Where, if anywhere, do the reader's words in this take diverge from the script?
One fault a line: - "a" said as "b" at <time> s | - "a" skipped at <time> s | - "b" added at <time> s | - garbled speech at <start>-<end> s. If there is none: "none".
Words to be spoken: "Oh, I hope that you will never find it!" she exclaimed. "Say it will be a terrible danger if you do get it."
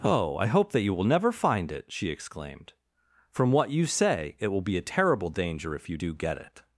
- "From what you" added at 3.3 s